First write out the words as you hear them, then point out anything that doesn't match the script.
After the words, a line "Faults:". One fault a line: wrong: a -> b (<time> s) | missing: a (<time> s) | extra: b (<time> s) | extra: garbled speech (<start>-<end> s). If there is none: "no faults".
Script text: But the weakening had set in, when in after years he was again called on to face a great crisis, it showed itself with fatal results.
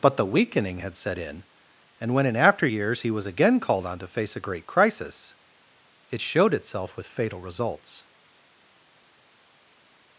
But the weakening had set in, and when in after years he was again called on to face a great crisis, it showed itself with fatal results.
Faults:
extra: and (2.0 s)